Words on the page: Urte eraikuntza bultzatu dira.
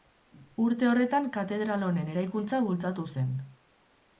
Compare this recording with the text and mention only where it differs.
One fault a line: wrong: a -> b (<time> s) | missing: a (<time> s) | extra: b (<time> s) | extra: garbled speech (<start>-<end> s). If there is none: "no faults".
extra: horretan katedral honen (0.9 s)
wrong: dira -> zen (3.2 s)